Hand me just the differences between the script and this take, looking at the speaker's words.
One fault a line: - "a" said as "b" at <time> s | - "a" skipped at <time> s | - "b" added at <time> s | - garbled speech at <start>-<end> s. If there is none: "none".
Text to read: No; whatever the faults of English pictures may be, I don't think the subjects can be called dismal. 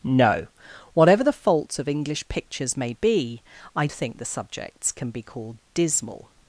- "don't" skipped at 3.9 s